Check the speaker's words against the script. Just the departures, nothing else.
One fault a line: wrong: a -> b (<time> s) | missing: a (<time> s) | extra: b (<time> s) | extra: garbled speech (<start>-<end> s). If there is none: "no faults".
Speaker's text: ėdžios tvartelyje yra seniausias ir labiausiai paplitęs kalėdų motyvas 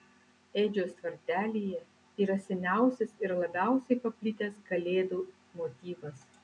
no faults